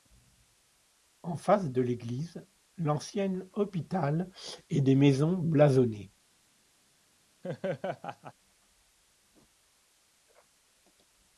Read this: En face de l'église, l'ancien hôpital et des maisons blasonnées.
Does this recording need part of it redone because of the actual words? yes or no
no